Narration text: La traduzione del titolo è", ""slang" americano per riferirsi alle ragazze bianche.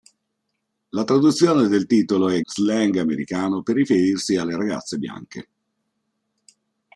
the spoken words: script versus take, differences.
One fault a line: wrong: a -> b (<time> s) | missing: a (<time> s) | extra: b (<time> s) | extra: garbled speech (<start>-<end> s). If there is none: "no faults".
no faults